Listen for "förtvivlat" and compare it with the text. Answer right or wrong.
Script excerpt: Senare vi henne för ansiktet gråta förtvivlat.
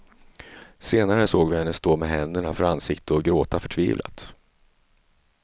right